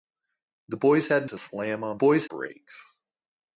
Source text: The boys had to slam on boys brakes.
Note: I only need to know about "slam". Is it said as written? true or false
true